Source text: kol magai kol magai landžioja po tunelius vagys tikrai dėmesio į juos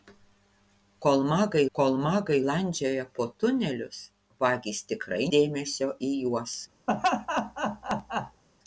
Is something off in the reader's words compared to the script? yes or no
no